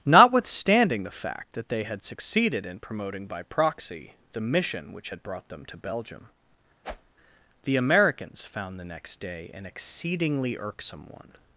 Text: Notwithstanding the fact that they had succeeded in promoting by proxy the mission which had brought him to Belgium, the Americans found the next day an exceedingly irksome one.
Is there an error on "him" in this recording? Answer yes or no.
yes